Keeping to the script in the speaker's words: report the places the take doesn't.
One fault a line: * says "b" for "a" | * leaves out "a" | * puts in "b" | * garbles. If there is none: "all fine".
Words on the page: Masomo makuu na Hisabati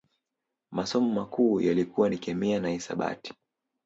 * puts in "yalikuwa ni Kemia"